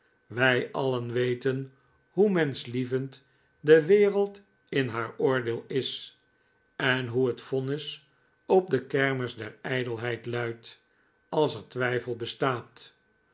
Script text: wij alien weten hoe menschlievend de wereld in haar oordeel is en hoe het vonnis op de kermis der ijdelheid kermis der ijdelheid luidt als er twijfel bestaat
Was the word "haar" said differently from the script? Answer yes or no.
no